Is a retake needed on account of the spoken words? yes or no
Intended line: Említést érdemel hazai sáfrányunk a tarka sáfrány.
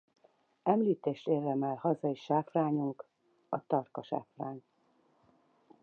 no